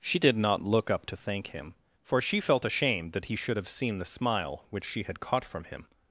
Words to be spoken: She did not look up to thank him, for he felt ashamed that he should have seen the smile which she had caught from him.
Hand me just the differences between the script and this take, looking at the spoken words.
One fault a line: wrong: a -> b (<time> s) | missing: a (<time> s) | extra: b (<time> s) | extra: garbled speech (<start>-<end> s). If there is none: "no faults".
wrong: he -> she (2.2 s)